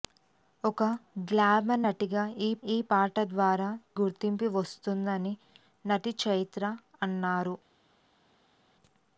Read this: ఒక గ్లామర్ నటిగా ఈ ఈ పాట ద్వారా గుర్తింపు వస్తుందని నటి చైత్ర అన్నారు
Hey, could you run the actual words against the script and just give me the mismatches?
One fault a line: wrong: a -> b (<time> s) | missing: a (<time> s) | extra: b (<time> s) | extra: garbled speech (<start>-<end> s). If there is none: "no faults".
no faults